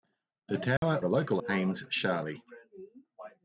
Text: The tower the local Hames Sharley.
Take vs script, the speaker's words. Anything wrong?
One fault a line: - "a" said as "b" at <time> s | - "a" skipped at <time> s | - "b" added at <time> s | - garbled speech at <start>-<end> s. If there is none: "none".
none